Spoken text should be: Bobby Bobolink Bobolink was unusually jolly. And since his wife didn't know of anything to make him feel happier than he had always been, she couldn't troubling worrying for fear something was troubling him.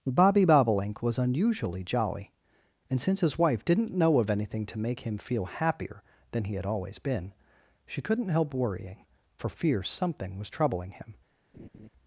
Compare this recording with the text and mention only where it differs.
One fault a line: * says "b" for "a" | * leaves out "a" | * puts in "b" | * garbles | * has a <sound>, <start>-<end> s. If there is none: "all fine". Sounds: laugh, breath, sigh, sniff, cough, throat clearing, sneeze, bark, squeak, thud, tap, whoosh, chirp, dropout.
* leaves out "Bobolink"
* says "help" for "troubling"
* has a laugh, 11.5-11.9 s